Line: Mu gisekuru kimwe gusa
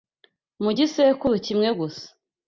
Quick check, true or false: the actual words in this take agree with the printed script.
true